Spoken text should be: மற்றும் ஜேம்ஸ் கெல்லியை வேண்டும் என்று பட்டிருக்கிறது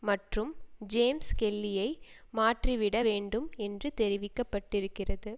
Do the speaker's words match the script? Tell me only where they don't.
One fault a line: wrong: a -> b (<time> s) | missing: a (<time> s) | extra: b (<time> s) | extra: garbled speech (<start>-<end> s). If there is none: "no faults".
extra: மாற்றிவிட (2.3 s)
extra: தெரிவிக்க (3.9 s)